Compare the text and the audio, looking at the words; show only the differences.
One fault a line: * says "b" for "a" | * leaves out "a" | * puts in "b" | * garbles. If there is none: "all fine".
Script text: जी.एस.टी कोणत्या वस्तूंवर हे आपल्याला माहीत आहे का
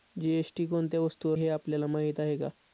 all fine